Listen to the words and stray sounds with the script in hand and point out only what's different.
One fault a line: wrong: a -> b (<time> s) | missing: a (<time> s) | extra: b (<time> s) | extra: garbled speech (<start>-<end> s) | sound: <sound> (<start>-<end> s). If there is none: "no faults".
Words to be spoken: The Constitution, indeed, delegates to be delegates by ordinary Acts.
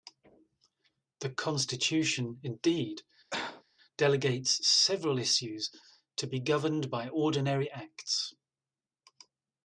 sound: cough (3.3-3.6 s)
extra: several issues (4.7 s)
wrong: delegates -> governed (6.4 s)